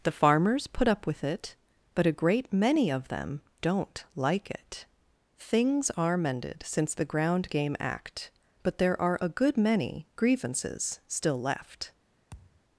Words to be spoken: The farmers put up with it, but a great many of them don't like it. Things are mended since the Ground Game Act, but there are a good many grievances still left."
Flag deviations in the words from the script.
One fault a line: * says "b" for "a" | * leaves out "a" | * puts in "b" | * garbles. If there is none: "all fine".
all fine